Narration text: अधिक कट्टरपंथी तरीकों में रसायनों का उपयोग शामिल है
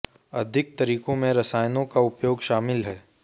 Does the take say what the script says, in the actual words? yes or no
no